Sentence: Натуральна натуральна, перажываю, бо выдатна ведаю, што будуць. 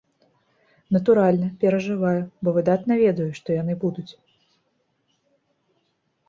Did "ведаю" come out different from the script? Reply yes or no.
no